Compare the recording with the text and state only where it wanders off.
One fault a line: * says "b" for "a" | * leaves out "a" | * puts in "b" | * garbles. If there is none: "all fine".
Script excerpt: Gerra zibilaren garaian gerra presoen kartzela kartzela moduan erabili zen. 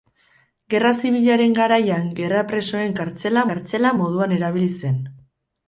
all fine